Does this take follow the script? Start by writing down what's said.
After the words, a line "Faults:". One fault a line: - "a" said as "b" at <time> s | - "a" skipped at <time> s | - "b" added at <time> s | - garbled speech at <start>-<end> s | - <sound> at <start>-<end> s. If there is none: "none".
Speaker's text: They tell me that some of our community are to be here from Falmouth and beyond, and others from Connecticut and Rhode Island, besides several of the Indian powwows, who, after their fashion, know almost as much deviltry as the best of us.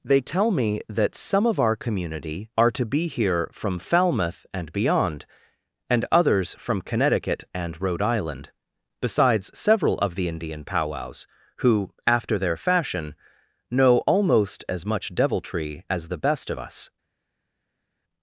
They tell me that some of our community are to be here from Falmouth and beyond, and others from Connecticut and Rhode Island, besides several of the Indian powwows, who, after their fashion, know almost as much deviltry as the best of us.
Faults:
none